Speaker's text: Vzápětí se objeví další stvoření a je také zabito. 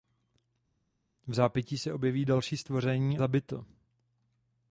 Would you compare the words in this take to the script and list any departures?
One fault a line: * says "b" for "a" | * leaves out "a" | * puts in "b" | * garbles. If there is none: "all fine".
* leaves out "a je také"